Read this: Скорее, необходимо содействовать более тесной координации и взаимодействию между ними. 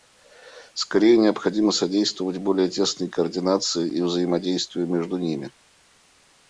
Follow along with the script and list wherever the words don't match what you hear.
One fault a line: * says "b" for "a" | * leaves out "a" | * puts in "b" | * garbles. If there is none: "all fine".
all fine